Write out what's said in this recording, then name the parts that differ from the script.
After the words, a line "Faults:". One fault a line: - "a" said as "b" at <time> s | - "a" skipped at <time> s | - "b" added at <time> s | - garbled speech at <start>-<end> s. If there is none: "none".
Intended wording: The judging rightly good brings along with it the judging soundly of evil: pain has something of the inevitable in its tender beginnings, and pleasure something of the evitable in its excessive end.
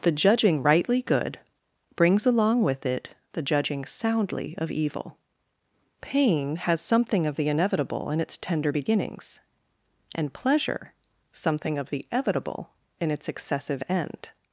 The judging rightly good brings along with it the judging soundly of evil: pain has something of the inevitable in its tender beginnings, and pleasure something of the evitable in its excessive end.
Faults:
none